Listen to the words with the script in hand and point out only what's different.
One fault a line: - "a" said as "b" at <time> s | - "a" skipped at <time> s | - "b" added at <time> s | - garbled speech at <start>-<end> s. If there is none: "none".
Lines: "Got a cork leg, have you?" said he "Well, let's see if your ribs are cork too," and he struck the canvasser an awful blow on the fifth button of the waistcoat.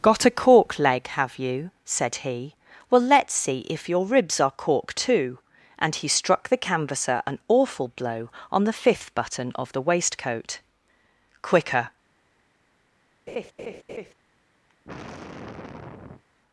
- "Quicker" added at 11.4 s